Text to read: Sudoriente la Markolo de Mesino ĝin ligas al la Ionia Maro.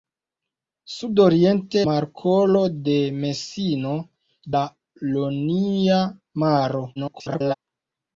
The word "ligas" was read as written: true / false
false